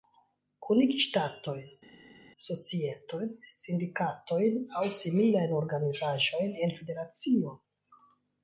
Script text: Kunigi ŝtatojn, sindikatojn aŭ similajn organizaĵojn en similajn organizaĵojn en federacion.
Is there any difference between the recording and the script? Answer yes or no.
yes